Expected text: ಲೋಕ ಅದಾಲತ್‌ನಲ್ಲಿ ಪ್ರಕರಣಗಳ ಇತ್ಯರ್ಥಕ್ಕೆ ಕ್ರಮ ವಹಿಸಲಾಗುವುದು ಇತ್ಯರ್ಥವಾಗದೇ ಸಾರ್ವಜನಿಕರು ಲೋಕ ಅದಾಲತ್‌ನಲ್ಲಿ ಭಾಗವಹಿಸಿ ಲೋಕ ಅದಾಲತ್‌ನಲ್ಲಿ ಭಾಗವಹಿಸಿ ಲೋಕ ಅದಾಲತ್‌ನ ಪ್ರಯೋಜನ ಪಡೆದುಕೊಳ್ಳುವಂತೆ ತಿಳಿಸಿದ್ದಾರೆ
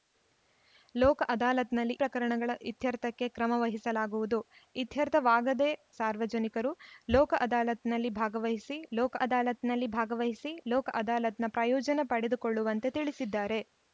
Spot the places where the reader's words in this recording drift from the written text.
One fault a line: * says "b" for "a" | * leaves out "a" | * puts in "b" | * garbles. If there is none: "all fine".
all fine